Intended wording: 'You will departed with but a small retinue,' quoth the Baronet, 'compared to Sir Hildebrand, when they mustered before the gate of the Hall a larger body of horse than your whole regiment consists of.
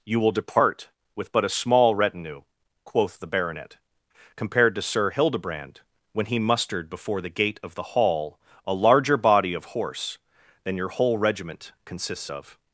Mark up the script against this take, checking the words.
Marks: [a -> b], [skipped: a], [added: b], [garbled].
'You will [departed -> depart] with but a small retinue,' quoth the Baronet, 'compared to Sir Hildebrand, when [they -> he] mustered before the gate of the Hall a larger body of horse than your whole regiment consists of.